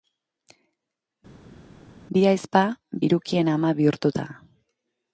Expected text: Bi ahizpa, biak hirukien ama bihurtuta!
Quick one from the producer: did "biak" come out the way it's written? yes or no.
no